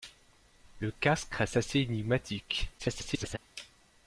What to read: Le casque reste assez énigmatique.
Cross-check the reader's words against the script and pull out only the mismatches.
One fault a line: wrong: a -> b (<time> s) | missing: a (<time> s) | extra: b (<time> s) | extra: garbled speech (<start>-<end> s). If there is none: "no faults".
extra: garbled speech (2.8-3.4 s)